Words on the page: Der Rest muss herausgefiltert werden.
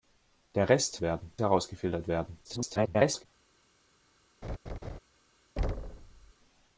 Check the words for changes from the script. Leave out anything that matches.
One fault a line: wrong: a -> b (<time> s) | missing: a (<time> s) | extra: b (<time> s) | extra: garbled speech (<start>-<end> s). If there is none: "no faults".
wrong: muss -> werden (1.0 s)
extra: garbled speech (2.4-3.3 s)